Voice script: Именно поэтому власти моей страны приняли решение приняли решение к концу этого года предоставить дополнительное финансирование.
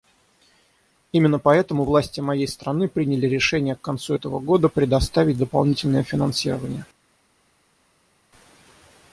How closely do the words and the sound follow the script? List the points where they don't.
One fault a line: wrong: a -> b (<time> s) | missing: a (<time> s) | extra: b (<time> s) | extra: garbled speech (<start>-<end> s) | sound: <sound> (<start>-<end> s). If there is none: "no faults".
missing: приняли решение (3.7 s)